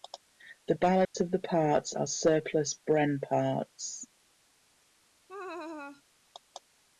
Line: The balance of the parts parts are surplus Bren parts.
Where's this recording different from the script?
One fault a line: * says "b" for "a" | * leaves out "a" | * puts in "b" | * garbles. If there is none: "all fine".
* leaves out "parts"